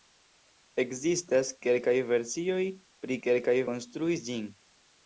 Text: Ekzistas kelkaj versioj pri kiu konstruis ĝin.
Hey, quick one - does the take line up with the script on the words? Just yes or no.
no